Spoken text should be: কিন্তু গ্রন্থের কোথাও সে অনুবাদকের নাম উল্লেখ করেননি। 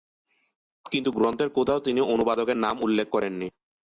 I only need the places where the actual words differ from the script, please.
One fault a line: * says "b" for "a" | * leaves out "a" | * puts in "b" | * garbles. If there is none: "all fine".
* says "তিনি" for "সে"